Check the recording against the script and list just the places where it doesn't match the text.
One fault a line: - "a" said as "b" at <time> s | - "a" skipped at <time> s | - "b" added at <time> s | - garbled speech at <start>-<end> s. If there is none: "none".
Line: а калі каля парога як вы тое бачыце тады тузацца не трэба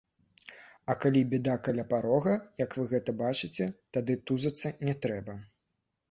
- "бяда" added at 1.3 s
- "тое" said as "гэта" at 2.9 s